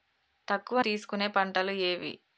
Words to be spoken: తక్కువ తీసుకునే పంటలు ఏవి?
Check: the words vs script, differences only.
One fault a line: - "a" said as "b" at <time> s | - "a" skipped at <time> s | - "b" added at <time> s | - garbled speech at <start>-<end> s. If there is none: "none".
none